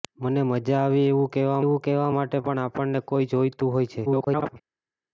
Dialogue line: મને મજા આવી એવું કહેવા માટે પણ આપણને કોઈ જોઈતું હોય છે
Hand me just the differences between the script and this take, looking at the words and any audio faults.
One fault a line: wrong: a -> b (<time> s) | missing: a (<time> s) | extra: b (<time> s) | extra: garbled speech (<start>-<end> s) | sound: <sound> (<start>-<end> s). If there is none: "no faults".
extra: એવું કહેવા (1.6 s)
extra: garbled speech (4.1-4.6 s)